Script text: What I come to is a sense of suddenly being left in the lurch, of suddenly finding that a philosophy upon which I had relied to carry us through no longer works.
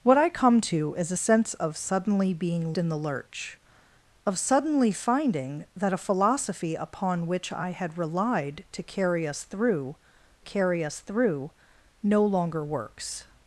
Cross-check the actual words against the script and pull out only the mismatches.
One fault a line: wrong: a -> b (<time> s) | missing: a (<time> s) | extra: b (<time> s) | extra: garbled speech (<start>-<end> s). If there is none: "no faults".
missing: left (2.7 s)
extra: carry us through (10.4 s)